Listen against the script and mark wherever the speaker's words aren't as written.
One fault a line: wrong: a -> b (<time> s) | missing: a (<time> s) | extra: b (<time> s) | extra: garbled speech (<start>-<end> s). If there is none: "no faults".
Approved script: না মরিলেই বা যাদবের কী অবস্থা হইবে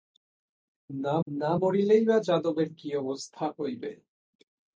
extra: না (1.3 s)